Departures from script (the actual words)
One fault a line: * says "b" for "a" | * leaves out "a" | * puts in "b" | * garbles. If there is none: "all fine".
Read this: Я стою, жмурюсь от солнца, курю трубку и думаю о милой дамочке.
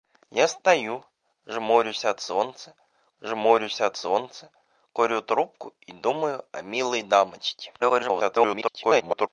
* puts in "жмурюсь от солнца"
* garbles